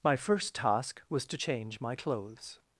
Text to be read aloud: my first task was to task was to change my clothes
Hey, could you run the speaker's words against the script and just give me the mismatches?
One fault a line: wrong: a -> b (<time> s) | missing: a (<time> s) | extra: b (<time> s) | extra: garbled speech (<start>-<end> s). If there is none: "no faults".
missing: task was to (1.4 s)